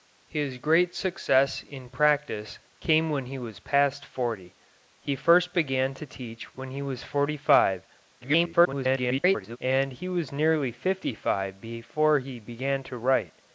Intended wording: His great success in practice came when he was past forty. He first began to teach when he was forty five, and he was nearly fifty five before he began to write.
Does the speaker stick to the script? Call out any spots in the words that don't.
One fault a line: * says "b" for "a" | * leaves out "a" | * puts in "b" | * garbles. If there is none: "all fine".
* garbles